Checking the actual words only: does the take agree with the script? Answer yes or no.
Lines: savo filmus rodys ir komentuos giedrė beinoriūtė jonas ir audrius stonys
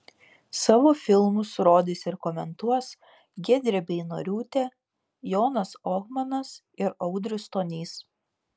no